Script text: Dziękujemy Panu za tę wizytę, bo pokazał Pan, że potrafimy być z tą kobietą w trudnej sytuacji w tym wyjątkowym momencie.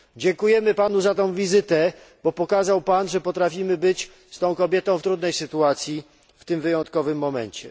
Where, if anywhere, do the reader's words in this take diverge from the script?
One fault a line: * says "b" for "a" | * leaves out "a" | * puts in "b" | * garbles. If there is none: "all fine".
all fine